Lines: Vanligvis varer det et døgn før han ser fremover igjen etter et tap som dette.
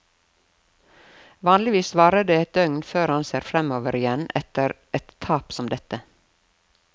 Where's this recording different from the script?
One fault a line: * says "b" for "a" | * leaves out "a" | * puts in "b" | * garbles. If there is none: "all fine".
all fine